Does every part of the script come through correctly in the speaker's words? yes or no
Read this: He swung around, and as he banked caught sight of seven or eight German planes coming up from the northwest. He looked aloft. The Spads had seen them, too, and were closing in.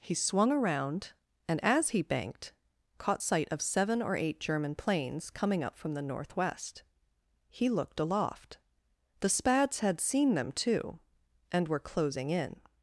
yes